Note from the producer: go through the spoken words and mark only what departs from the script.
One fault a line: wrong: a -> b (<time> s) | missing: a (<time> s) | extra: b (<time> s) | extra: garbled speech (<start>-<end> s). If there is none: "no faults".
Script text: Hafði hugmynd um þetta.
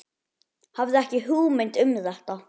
extra: ekki (1.0 s)